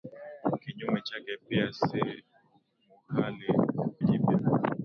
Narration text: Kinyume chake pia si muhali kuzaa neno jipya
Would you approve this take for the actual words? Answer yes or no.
no